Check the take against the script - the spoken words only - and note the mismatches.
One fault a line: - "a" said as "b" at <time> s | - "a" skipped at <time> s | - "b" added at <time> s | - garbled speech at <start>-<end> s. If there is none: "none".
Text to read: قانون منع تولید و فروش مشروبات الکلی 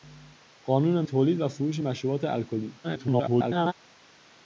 - "منع" skipped at 1.1 s
- garbled speech at 2.8-3.7 s